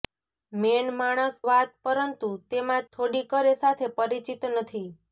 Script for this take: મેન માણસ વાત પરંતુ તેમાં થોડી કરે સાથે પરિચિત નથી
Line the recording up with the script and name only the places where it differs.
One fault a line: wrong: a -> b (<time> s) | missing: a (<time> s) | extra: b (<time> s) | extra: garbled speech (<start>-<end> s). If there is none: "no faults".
no faults